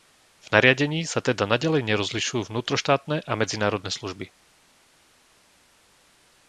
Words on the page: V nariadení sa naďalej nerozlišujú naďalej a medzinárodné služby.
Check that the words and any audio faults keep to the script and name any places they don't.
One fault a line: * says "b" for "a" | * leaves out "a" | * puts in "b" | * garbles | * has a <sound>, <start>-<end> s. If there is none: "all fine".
* puts in "teda"
* says "vnútroštátne" for "naďalej"